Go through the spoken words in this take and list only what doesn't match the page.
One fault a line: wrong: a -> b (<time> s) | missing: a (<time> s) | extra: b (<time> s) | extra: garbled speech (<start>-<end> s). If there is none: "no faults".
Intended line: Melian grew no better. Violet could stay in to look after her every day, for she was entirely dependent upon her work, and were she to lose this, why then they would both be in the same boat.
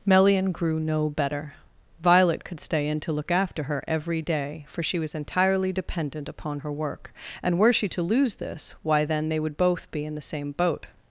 no faults